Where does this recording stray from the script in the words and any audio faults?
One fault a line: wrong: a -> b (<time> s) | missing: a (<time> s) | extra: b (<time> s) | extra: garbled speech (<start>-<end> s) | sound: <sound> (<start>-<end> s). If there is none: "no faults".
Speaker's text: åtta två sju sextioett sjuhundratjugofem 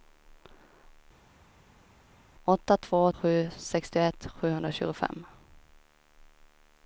no faults